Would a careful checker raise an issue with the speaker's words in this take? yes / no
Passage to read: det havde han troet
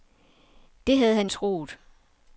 no